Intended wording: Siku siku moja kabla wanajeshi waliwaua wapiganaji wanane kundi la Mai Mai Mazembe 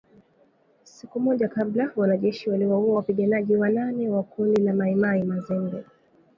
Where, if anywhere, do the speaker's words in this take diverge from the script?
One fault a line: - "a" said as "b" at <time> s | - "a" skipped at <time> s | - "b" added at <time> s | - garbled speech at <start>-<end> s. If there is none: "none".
- "siku" skipped at 1.2 s
- "wa" added at 4.1 s